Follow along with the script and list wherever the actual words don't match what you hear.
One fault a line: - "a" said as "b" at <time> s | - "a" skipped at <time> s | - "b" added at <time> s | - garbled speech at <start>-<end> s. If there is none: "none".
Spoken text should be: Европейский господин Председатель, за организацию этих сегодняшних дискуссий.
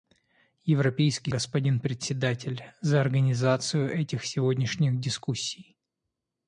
none